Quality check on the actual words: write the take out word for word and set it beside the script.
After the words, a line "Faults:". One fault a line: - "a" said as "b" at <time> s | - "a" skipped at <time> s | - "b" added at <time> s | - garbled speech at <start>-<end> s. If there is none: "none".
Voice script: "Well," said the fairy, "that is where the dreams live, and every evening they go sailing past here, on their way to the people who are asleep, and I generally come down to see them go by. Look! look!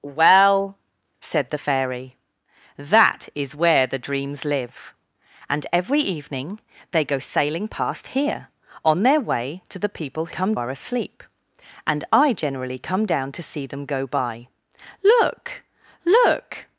"Well," said the fairy, "that is where the dreams live, and every evening they go sailing past here, on their way to the people come are asleep, and I generally come down to see them go by. Look! look!
Faults:
- "who" said as "come" at 10.3 s